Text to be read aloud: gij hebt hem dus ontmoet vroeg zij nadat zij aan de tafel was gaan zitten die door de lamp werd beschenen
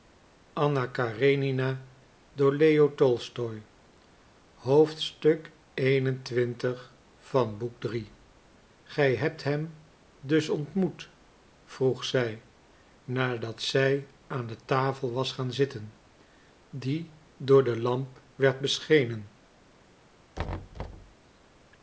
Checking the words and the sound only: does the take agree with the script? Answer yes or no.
no